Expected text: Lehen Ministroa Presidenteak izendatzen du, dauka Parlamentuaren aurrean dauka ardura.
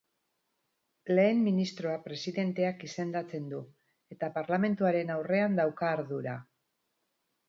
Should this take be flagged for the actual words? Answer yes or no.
yes